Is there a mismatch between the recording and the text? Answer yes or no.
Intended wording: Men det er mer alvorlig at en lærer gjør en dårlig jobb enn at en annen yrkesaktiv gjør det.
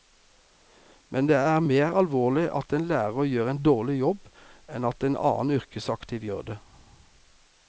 no